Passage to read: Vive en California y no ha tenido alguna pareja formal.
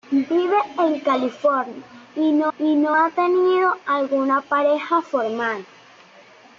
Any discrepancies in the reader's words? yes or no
yes